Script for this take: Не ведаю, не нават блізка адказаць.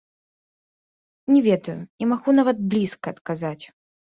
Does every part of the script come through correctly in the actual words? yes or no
no